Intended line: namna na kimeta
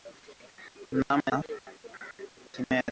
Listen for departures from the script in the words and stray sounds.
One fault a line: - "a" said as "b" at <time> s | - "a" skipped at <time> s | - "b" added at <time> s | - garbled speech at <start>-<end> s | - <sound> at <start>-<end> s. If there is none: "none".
none